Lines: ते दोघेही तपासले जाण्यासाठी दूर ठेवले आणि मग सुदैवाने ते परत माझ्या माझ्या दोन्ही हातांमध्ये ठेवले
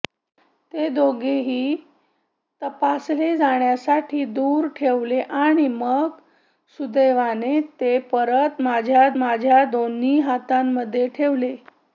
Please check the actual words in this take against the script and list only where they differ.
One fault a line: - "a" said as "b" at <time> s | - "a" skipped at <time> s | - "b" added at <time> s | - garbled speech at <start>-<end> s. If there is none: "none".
none